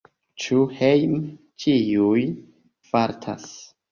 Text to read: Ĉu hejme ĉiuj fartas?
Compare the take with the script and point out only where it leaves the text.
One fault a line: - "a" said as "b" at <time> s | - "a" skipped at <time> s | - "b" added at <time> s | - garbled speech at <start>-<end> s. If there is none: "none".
none